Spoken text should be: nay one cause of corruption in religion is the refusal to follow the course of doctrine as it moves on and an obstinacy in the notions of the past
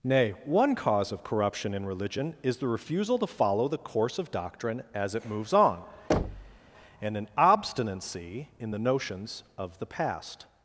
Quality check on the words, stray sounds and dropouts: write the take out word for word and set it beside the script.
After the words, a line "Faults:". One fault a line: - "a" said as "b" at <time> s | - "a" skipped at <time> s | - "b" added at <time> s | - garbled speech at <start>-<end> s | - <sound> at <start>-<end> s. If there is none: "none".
nay one cause of corruption in religion is the refusal to follow the course of doctrine as it moves on and an obstinacy in the notions of the past
Faults:
- thud at 6.1-6.6 s